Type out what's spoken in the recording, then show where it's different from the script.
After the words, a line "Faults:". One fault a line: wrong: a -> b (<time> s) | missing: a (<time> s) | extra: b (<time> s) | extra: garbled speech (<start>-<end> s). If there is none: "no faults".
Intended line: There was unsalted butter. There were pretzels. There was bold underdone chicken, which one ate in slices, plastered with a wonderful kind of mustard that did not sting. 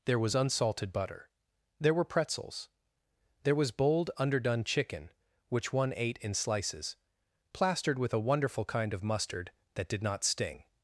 There was unsalted butter. There were pretzels. There was bold underdone chicken, which one ate in slices, plastered with a wonderful kind of mustard that did not sting.
Faults:
no faults